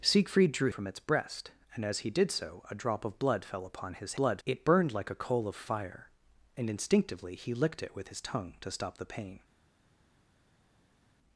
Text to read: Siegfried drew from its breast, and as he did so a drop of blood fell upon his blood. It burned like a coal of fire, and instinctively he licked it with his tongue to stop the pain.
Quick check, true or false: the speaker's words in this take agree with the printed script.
true